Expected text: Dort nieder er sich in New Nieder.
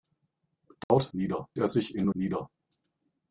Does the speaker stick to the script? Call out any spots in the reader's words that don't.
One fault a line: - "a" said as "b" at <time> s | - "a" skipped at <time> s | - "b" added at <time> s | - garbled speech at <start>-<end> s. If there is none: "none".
none